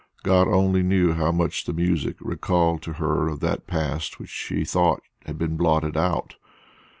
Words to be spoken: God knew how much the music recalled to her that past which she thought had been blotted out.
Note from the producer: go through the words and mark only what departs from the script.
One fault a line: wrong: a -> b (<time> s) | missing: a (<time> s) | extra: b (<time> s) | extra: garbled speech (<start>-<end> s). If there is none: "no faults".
extra: only (0.5 s)
extra: of (3.3 s)